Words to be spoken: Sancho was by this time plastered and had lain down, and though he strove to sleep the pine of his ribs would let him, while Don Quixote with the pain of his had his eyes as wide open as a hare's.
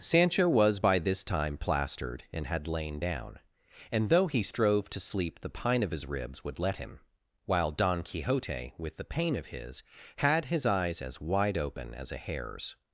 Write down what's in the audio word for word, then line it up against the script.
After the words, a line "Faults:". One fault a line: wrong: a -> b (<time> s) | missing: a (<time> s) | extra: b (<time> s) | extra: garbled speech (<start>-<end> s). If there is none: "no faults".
Sancho was by this time plastered and had lain down, and though he strove to sleep the pine of his ribs would let him, while Don Quixote with the pain of his had his eyes as wide open as a hare's.
Faults:
no faults